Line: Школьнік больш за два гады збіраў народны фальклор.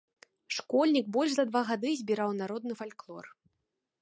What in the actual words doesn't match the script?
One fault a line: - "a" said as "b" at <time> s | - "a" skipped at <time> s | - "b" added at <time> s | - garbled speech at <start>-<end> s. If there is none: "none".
none